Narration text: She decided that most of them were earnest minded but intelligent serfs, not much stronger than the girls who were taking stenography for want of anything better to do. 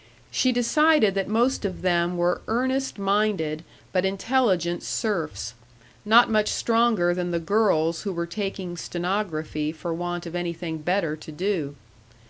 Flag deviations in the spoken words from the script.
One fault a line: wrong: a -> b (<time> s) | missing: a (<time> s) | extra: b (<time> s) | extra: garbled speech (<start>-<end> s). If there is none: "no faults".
no faults